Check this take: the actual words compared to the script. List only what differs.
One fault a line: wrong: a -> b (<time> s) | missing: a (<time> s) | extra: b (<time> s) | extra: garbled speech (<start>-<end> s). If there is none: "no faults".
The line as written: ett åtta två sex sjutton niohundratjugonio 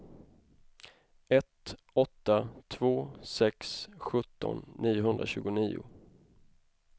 no faults